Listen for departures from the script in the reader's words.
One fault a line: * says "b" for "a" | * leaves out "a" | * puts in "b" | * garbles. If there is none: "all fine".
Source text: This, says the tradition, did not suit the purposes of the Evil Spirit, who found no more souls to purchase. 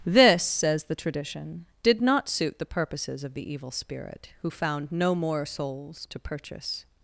all fine